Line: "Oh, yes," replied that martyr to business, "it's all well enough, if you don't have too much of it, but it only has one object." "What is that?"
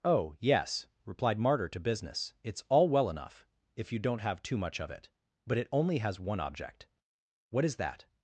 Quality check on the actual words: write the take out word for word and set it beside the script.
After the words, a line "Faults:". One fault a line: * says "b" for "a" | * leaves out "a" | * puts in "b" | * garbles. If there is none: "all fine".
"Oh, yes," replied martyr to business, "it's all well enough, if you don't have too much of it, but it only has one object." "What is that?"
Faults:
* leaves out "that"